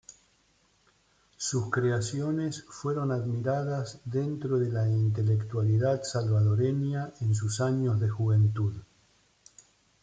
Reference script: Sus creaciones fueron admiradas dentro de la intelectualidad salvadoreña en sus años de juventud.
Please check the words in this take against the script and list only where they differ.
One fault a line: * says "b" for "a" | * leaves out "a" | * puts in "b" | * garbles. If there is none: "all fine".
all fine